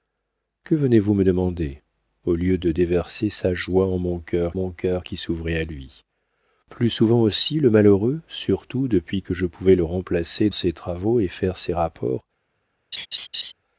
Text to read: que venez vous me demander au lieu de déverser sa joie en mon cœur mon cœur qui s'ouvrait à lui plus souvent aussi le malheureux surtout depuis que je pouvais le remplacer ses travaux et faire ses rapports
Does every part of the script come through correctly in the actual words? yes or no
yes